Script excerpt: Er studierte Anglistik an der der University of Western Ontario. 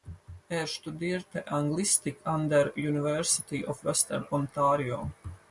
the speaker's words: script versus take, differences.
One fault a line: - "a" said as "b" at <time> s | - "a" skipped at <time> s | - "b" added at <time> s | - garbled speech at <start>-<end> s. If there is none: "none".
- "der" skipped at 2.8 s